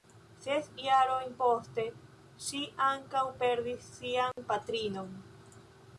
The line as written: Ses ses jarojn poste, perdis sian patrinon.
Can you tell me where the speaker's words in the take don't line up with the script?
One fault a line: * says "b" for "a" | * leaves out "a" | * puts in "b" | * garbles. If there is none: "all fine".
* leaves out "ses"
* puts in "ŝi ankaŭ"